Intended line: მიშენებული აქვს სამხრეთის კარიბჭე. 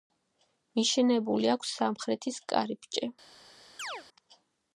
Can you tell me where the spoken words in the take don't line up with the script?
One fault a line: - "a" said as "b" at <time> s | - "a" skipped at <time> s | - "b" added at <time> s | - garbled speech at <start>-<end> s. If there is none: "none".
none